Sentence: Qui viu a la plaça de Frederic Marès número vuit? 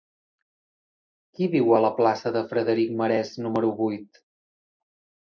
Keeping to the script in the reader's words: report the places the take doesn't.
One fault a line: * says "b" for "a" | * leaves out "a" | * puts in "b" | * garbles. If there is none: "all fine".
all fine